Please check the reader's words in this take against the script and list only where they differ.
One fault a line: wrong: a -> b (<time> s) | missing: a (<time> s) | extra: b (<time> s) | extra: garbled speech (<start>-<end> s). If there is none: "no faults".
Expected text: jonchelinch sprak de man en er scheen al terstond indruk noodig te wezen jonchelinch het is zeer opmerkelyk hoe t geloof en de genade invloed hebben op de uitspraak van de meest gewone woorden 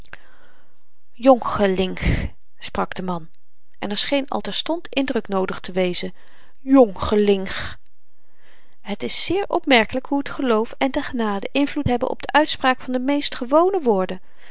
no faults